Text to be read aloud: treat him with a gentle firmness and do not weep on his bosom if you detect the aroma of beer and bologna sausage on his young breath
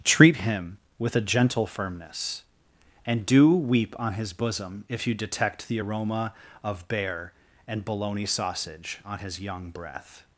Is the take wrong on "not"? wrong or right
wrong